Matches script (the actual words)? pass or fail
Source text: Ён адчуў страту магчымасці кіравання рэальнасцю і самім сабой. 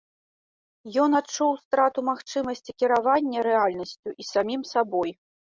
pass